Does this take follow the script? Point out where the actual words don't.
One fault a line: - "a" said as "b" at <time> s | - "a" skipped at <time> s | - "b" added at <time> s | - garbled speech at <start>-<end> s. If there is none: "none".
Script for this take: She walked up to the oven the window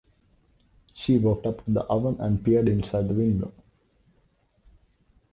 - "and peered inside" added at 2.2 s